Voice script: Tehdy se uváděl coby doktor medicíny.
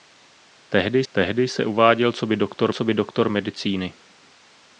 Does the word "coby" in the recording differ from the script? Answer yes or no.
no